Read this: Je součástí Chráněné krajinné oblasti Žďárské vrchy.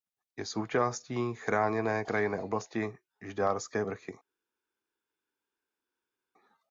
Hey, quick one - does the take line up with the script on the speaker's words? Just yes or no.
yes